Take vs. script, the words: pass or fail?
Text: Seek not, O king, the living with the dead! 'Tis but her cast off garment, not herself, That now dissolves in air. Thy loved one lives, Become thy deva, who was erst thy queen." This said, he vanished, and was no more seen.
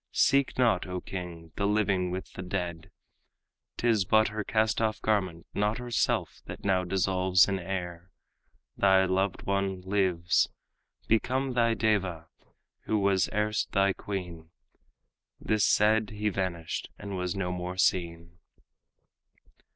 pass